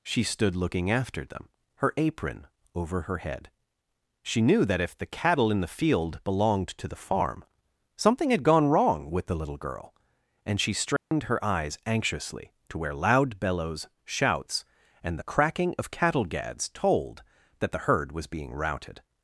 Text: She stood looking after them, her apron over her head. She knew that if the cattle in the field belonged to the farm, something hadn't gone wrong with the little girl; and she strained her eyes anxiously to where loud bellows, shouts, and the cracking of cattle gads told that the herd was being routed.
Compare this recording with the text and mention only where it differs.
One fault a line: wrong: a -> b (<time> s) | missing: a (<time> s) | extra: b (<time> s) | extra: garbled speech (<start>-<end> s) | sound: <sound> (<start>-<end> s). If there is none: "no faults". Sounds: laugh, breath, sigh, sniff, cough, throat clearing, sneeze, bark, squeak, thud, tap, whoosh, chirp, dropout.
wrong: hadn't -> had (8.3 s)
sound: dropout (11.0-11.1 s)